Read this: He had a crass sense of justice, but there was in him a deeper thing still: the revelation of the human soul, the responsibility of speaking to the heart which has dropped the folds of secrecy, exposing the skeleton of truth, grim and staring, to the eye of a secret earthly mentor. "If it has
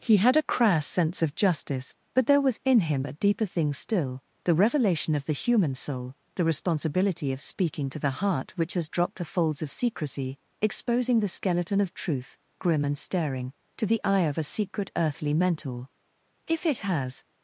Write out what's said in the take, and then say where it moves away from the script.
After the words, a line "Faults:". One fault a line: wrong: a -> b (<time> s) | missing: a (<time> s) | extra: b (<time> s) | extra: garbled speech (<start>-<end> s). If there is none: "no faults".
He had a crass sense of justice, but there was in him a deeper thing still: the revelation of the human soul, the responsibility of speaking to the heart which has dropped the folds of secrecy, exposing the skeleton of truth, grim and staring, to the eye of a secret earthly mentor. "If it has
Faults:
no faults